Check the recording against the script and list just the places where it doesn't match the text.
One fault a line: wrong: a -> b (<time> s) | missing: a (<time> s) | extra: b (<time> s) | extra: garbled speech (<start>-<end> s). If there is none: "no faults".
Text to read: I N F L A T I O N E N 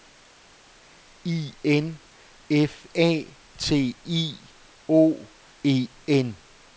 missing: L (2.9 s)
missing: N (5.3 s)